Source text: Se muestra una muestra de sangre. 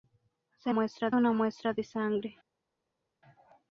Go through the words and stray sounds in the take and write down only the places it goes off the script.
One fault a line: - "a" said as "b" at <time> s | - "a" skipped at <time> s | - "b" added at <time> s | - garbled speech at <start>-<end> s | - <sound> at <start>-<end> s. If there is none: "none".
none